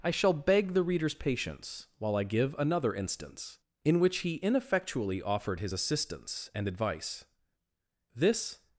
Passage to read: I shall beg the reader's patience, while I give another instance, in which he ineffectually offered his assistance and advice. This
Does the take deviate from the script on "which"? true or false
false